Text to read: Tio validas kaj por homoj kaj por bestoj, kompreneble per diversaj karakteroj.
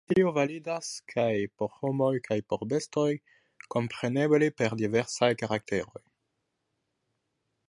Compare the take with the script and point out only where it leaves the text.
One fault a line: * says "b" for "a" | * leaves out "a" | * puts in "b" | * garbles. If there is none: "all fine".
all fine